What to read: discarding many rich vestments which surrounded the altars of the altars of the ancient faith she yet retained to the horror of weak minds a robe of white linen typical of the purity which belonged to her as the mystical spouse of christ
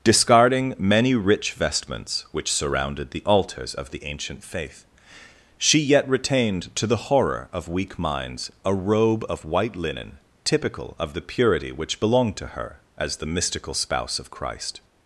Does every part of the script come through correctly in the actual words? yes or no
no